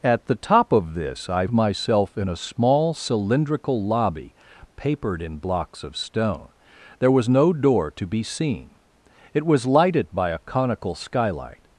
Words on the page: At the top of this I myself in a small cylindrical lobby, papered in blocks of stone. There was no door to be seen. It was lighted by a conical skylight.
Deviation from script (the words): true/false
false